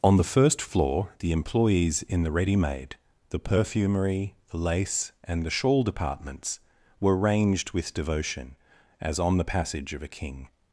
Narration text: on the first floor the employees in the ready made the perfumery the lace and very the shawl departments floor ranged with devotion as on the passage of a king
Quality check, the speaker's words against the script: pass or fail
fail